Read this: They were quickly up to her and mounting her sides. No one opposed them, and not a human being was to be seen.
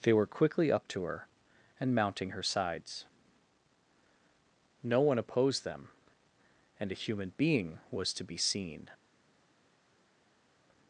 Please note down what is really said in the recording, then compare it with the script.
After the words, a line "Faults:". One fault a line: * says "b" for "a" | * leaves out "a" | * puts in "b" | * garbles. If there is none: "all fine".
They were quickly up to her and mounting her sides. No one opposed them, and a human being was to be seen.
Faults:
* leaves out "not"